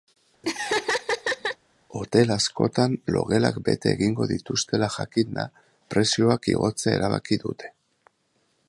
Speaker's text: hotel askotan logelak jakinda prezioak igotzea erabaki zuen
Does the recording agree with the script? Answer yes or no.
no